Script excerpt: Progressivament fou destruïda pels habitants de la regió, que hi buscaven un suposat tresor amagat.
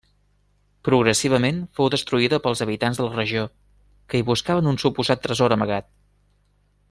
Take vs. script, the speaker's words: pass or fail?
pass